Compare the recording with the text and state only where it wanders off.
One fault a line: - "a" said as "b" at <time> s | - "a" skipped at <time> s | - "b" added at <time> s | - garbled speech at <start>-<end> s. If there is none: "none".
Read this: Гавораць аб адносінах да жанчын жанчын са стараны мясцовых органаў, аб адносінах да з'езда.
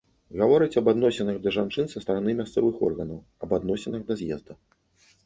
- "жанчын" skipped at 1.9 s